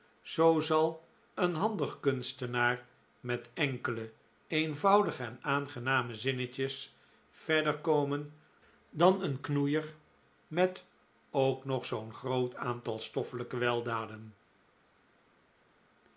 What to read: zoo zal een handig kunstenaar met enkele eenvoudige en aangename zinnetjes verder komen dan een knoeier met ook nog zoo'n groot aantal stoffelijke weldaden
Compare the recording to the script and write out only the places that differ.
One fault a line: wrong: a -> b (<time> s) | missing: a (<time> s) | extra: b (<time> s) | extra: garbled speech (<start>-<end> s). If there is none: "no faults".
no faults